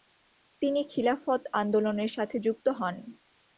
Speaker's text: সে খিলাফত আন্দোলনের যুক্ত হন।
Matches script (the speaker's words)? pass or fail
fail